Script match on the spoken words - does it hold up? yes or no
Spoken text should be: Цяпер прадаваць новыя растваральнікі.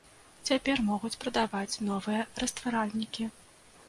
no